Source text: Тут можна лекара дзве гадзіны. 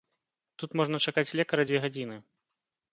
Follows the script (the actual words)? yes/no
no